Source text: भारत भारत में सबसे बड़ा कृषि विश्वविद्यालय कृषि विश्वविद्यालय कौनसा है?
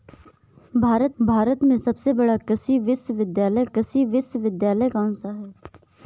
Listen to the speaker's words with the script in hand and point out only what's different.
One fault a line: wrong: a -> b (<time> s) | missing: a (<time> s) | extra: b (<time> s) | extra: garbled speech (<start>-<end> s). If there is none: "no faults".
no faults